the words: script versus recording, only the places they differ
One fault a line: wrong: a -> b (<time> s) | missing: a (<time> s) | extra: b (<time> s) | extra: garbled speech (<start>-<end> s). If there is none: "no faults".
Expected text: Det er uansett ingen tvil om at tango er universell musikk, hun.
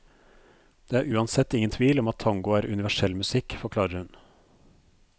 extra: forklarer (3.6 s)